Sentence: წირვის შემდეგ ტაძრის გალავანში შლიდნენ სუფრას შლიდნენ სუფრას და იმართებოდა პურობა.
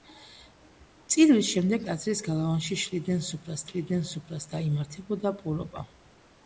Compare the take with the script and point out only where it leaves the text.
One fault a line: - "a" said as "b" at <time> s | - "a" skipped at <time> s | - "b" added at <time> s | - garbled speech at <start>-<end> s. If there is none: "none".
none